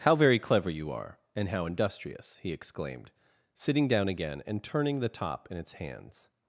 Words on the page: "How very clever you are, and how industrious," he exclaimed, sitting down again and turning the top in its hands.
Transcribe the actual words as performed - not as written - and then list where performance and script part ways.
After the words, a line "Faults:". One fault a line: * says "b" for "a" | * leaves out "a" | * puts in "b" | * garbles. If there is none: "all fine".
"How very clever you are, and how industrious," he exclaimed, sitting down again and turning the top in its hands.
Faults:
all fine